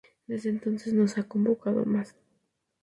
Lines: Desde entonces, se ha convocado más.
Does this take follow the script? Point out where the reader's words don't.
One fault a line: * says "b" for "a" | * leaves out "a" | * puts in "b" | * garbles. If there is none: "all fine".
* puts in "no"